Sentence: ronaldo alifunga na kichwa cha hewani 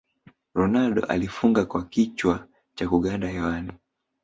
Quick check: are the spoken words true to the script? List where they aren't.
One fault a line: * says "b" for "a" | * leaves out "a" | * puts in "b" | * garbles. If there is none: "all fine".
* says "kwa" for "na"
* puts in "kuganda"